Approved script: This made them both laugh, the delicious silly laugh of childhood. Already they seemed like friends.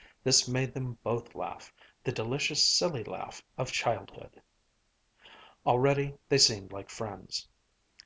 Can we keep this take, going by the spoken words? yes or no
yes